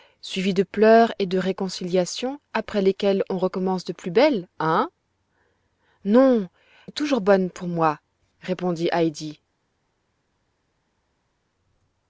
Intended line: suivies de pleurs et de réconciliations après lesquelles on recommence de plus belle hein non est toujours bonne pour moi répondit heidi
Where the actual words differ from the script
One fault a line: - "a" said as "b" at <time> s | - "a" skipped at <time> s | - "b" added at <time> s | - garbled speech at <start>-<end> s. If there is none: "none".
none